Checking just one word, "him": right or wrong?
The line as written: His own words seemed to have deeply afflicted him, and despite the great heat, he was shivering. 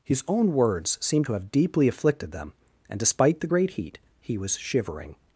wrong